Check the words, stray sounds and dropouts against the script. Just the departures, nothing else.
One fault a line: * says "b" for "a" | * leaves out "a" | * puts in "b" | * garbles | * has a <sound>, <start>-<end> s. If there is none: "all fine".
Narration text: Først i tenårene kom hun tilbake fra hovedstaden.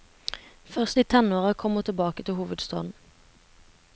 * says "til" for "fra"